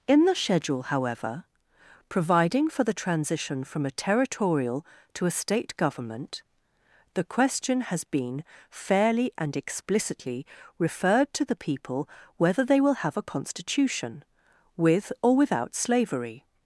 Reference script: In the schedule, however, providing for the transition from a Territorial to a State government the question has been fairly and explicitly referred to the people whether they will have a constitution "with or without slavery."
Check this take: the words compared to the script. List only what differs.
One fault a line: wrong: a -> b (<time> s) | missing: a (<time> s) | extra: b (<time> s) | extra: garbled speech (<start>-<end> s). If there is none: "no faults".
no faults